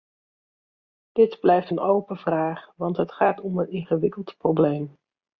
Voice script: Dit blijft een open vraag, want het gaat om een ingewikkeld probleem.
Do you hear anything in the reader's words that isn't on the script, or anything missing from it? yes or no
no